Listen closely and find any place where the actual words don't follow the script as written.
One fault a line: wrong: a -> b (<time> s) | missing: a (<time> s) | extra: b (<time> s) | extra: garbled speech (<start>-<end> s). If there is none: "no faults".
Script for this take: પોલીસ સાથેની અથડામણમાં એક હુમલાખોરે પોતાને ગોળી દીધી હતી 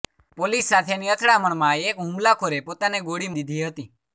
no faults